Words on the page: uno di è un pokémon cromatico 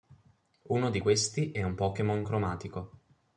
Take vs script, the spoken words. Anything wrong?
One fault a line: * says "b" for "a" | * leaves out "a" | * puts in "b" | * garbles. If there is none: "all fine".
* puts in "questi"